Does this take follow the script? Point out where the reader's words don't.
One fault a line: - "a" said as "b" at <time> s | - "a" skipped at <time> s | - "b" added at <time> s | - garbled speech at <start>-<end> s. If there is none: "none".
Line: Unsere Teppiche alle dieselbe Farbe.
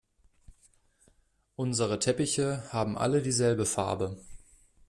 - "haben" added at 2.7 s